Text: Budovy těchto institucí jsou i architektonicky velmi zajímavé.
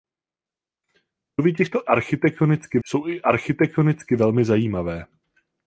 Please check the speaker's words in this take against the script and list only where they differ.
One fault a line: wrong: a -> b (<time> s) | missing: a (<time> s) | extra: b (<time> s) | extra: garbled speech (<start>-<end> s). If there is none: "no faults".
wrong: institucí -> architektonicky (1.8 s)